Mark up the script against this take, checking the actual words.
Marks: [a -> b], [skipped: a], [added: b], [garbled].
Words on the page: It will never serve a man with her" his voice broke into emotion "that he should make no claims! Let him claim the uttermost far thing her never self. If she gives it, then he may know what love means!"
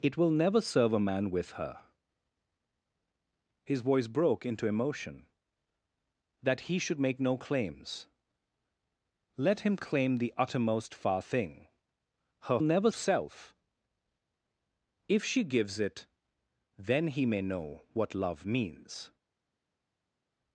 It will never serve a man with her" his voice broke into emotion "that he should make no claims! Let him claim the uttermost far thing her never self. If she gives it, then he may know what love means!"